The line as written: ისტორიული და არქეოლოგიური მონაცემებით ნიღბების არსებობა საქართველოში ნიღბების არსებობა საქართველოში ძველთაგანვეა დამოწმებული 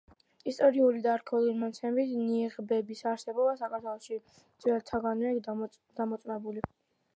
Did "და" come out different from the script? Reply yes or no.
no